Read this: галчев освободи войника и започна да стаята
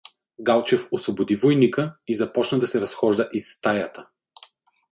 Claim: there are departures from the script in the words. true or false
true